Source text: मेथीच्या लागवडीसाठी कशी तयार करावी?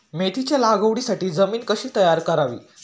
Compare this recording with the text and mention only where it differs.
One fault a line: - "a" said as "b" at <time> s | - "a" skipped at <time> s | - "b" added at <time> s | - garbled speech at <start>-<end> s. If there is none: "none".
- "जमीन" added at 1.3 s